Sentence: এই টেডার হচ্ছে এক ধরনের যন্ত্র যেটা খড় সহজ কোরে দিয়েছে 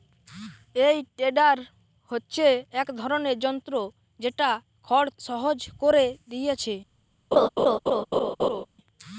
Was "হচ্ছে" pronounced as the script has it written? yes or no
yes